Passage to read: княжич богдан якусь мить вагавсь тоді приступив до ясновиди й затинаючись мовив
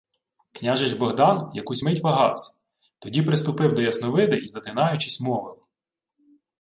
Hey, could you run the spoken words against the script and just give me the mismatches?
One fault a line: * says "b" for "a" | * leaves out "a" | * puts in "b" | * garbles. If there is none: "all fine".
all fine